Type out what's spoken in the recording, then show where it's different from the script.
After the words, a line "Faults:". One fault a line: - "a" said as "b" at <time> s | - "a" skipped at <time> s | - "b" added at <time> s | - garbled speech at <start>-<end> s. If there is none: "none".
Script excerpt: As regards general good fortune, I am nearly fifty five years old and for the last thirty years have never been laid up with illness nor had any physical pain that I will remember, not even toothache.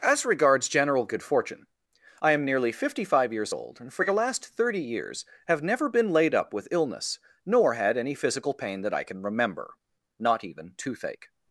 As regards general good fortune, I am nearly fifty five years old and for the last thirty years have never been laid up with illness nor had any physical pain that I can remember, not even toothache.
Faults:
- "will" said as "can" at 9.0 s